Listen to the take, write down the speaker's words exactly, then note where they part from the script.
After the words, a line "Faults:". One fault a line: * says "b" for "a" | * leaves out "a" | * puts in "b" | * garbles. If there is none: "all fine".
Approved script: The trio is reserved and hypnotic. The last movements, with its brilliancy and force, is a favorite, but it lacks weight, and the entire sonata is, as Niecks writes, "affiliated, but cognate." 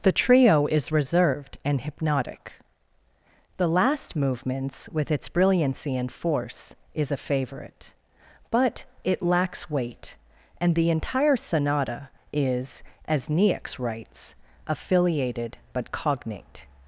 The trio is reserved and hypnotic. The last movements, with its brilliancy and force, is a favorite, but it lacks weight, and the entire sonata is, as Niecks writes, "affiliated, but cognate."
Faults:
all fine